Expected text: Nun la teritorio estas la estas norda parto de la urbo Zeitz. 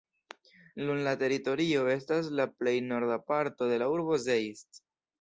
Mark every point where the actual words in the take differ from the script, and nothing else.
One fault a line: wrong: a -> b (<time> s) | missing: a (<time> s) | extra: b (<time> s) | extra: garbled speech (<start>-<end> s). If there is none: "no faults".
wrong: estas -> plej (2.6 s)